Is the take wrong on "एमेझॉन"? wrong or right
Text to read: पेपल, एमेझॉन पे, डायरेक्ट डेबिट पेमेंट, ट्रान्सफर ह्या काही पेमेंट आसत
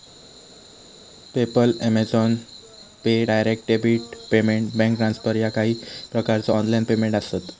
right